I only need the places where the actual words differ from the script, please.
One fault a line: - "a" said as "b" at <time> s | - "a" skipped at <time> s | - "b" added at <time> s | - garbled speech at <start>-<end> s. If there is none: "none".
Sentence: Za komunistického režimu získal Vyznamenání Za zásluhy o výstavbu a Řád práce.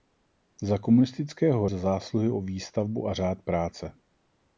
- "režimu získal Vyznamenání" skipped at 1.7 s